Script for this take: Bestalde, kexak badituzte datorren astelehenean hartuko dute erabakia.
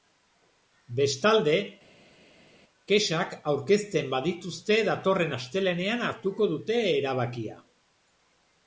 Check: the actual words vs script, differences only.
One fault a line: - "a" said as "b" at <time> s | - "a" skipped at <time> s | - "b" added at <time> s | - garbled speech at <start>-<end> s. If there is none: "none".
- "aurkezten" added at 3.5 s